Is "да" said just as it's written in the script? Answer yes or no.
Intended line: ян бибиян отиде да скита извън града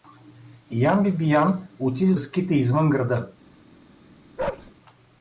no